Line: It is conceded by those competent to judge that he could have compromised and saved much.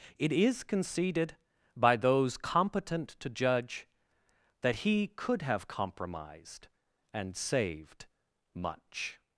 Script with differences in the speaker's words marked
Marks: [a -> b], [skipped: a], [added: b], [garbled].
It is conceded by those competent to judge that he could have compromised and saved much.